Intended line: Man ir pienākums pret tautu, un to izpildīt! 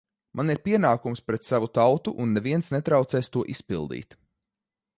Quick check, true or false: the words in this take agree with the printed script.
false